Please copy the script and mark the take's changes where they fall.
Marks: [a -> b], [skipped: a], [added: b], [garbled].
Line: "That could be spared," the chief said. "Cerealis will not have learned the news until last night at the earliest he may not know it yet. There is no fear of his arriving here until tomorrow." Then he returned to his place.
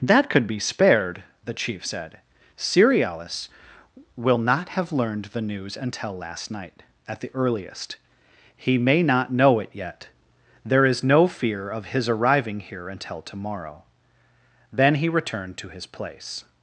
"That could be spared," the chief said. "Cerealis will not have learned the news until last night at the earliest he may not know it yet. There is no fear of his arriving here until tomorrow." Then he returned to his place.